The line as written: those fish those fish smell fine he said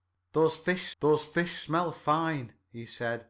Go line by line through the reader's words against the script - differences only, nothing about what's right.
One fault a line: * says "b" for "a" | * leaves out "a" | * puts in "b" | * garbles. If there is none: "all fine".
all fine